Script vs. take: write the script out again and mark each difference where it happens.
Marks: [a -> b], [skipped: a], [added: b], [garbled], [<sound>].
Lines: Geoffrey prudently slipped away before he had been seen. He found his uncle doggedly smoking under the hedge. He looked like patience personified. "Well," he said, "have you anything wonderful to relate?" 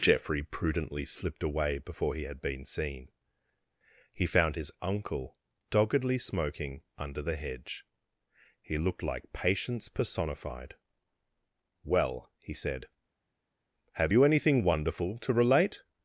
Geoffrey prudently slipped away before he had been seen. He found his uncle doggedly smoking under the hedge. He looked like patience personified. "Well," he said, "have you anything wonderful to relate?"